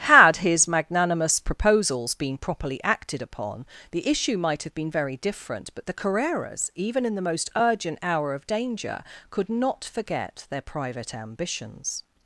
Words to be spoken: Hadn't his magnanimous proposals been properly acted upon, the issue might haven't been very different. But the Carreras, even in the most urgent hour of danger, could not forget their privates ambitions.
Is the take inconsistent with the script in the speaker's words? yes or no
yes